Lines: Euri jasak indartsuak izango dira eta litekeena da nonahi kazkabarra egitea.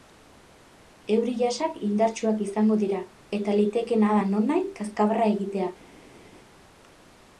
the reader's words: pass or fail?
pass